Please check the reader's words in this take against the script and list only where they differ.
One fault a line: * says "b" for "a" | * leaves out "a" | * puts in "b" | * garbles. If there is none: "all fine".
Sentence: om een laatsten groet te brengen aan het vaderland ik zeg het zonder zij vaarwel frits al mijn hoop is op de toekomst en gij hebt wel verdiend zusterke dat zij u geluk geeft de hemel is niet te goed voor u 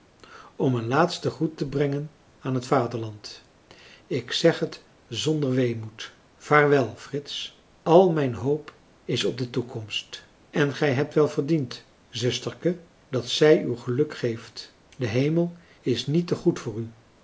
* says "weemoed" for "zij"